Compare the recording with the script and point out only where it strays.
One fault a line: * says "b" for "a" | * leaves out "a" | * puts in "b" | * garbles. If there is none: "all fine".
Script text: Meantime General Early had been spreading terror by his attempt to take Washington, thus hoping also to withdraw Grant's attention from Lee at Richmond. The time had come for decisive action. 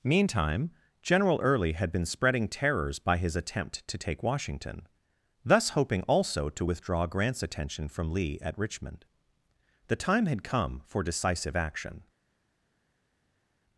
* says "terrors" for "terror"